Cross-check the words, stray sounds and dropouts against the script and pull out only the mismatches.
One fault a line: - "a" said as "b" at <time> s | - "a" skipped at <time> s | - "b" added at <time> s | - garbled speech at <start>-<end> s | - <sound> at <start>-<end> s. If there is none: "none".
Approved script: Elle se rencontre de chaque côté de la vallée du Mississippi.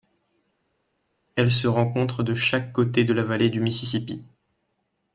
none